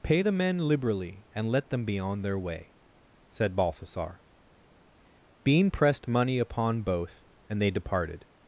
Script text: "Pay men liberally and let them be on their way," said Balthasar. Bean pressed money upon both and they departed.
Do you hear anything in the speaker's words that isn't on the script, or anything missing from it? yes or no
yes